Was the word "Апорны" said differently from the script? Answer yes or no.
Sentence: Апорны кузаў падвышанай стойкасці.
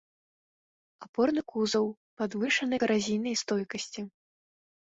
no